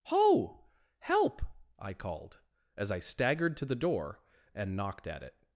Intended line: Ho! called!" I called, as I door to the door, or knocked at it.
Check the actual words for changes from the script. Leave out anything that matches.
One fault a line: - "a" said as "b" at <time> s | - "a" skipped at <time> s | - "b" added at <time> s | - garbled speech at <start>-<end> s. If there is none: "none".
- "called" said as "help" at 1.0 s
- "door" said as "staggered" at 3.0 s
- "or" said as "and" at 4.5 s